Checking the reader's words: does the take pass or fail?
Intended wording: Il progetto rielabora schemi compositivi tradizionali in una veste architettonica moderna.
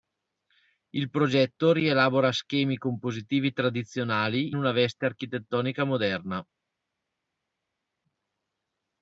fail